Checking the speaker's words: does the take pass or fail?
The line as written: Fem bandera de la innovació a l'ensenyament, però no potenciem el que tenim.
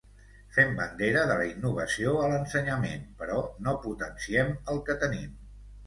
pass